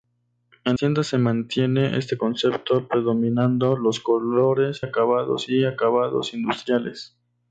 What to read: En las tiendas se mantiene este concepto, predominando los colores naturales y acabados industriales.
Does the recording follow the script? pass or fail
fail